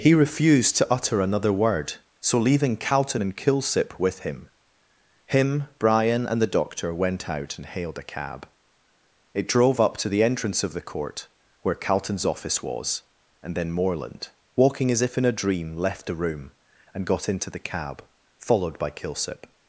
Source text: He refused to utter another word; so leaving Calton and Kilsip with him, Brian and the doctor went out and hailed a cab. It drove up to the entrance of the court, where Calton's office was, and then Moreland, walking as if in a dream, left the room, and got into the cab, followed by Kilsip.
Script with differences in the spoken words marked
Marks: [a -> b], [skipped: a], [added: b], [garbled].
He refused to utter another word; so leaving Calton and Kilsip with him, [added: him] Brian and the doctor went out and hailed a cab. It drove up to the entrance of the court, where Calton's office was, and then Moreland, walking as if in a dream, left the room, and got into the cab, followed by Kilsip.